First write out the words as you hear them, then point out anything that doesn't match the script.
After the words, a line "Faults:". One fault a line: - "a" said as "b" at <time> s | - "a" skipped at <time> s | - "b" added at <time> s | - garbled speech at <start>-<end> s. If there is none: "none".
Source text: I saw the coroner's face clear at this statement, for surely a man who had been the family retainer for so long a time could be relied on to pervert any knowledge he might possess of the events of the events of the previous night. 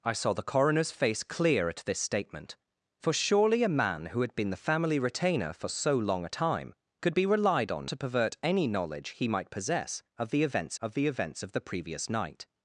I saw the coroner's face clear at this statement, for surely a man who had been the family retainer for so long a time could be relied on to pervert any knowledge he might possess of the events of the events of the previous night.
Faults:
none